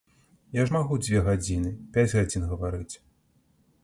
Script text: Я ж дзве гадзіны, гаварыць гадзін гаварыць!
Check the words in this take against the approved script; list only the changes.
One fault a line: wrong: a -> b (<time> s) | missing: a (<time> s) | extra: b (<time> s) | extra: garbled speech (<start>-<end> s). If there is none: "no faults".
extra: магу (0.7 s)
wrong: гаварыць -> пяць (1.9 s)